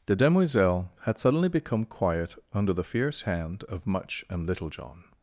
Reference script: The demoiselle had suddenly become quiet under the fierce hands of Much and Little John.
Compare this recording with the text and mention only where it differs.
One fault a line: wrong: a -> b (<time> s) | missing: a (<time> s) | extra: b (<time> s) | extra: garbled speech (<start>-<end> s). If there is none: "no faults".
wrong: hands -> hand (3.2 s)